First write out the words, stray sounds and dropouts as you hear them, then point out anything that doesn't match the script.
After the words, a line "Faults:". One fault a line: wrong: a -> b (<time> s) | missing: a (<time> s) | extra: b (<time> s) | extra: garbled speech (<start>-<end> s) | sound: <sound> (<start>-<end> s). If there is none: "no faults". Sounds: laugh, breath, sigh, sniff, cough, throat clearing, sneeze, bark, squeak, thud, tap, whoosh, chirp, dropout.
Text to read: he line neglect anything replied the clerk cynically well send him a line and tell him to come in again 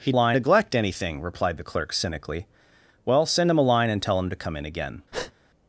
he line neglect anything replied the clerk cynically well send him a line and tell him to come in again
Faults:
sound: breath (5.1-5.3 s)